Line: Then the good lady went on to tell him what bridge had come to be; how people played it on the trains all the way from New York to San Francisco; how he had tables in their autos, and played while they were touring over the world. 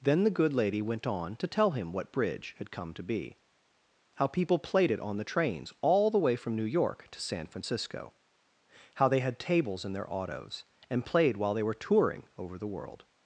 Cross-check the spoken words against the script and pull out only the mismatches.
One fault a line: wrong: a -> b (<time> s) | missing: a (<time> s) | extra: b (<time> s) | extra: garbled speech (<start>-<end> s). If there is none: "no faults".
wrong: he -> they (9.1 s)